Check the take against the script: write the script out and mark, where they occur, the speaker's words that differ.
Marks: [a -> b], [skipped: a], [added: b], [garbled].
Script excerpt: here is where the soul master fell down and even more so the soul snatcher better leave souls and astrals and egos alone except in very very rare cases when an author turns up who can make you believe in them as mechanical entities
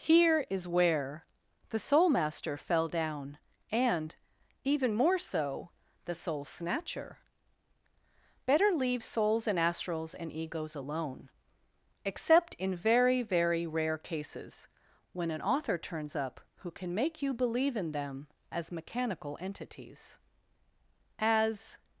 here is where the soul master fell down and even more so the soul snatcher better leave souls and astrals and egos alone except in very very rare cases when an author turns up who can make you believe in them as mechanical entities [added: as]